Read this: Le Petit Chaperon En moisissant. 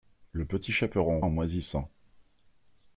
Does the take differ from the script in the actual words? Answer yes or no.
no